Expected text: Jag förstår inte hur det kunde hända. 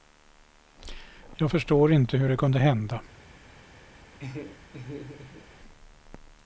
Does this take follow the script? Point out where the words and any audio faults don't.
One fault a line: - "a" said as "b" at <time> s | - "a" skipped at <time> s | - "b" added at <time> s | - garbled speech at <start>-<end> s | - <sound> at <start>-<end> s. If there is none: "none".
- laugh at 4.2-5.5 s